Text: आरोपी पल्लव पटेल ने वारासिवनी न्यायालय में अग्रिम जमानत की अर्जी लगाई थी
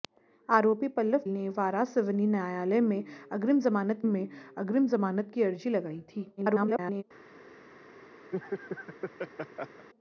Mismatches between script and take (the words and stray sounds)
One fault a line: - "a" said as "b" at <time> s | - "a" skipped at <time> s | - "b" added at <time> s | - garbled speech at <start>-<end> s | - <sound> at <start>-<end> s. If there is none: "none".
- "पटेल" skipped at 1.3 s
- "में अग्रिम जमानत" added at 4.0 s
- garbled speech at 6.4-7.0 s
- laugh at 8.3-9.9 s